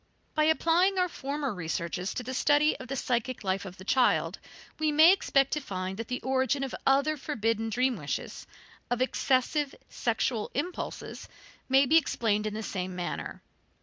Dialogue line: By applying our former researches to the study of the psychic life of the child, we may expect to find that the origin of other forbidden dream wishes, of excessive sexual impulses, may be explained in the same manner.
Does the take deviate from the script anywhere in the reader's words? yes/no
no